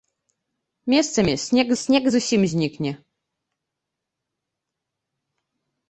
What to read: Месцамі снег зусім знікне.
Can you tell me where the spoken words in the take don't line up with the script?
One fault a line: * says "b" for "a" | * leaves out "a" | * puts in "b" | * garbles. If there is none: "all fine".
* puts in "снег"